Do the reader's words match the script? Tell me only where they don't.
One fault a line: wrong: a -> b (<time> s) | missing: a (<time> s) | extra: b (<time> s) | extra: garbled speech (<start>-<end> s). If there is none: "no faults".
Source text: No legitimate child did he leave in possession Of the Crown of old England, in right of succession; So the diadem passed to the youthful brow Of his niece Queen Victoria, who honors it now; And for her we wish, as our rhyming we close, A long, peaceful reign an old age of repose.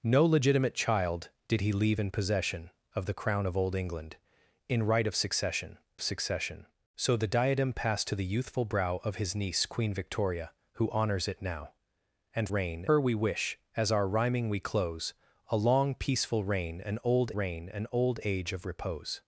extra: succession (6.0 s)
wrong: for -> reign (12.5 s)
extra: reign an old (17.3 s)